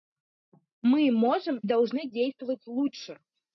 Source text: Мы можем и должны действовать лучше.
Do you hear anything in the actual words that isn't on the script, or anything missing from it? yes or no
yes